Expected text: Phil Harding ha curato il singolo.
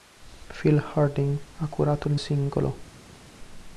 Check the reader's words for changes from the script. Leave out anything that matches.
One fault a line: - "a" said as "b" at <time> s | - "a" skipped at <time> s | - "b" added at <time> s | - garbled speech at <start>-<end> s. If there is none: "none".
none